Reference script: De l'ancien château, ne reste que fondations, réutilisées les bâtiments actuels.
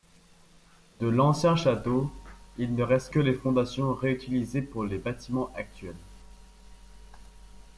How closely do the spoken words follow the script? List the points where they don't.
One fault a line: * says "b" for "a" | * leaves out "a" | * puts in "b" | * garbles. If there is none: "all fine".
* puts in "il"
* puts in "les"
* puts in "pour"